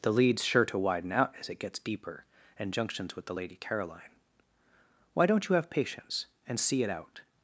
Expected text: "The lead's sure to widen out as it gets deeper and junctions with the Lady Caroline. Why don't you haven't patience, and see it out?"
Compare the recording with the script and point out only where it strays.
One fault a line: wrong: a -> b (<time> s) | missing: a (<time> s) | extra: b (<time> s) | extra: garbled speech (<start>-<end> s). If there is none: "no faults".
wrong: haven't -> have (5.6 s)